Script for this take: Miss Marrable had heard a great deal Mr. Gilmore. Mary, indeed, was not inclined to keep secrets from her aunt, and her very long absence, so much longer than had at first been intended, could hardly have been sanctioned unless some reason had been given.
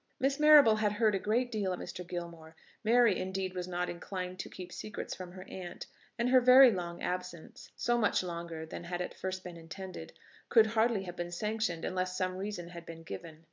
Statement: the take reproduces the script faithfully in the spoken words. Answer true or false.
true